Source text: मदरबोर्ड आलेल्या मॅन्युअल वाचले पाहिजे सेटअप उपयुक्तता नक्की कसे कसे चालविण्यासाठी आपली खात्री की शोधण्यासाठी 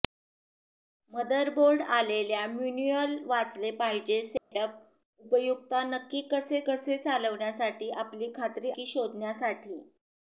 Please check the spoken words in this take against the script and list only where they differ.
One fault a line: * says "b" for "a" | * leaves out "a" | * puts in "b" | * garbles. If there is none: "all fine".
all fine